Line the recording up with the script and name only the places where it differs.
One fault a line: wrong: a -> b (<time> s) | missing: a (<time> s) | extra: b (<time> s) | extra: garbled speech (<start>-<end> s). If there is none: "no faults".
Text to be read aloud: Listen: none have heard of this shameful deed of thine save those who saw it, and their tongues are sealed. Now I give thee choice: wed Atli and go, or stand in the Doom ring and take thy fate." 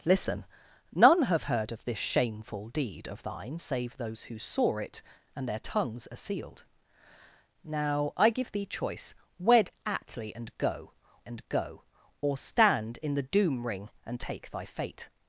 extra: and go (11.3 s)